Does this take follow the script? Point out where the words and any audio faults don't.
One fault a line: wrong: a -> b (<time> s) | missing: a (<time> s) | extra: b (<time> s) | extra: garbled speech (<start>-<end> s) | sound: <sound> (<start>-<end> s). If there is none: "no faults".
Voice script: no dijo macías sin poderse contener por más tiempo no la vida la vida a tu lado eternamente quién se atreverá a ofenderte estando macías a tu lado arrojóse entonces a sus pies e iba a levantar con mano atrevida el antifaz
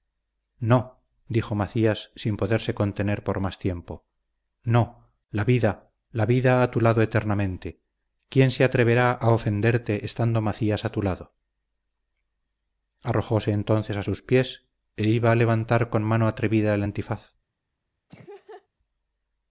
sound: laugh (18.1-18.7 s)